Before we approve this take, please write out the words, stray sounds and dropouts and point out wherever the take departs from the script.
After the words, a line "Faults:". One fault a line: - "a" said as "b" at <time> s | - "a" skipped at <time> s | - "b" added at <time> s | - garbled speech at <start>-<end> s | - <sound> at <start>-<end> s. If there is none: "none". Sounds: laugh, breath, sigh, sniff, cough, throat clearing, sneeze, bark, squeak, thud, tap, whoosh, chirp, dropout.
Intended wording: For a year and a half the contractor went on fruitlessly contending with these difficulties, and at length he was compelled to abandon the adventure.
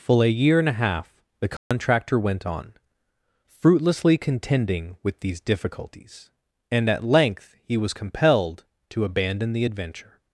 Full a year and a half the contractor went on fruitlessly contending with these difficulties, and at length he was compelled to abandon the adventure.
Faults:
- "For" said as "Full" at 0.0 s
- dropout at 1.6-1.7 s